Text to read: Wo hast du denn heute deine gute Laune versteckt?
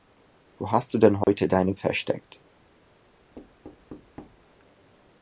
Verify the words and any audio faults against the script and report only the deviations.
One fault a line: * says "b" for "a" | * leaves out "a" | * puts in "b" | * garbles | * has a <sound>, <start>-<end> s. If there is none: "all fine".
* has a dropout, 1.2-1.3 s
* leaves out "gute Laune"
* has a thud, 3.4-4.5 s